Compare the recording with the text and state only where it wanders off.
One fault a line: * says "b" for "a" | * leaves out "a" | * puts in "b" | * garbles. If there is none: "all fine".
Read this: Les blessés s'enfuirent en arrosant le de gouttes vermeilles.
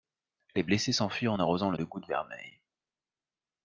all fine